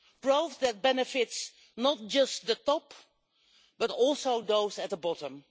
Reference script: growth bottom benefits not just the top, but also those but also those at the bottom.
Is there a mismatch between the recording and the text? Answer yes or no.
yes